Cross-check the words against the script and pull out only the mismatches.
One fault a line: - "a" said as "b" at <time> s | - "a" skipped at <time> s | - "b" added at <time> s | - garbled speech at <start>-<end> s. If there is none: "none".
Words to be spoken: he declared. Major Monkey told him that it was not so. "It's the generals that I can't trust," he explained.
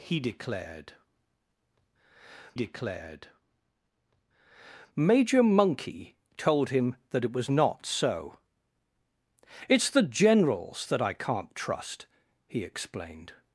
- "declared" added at 2.5 s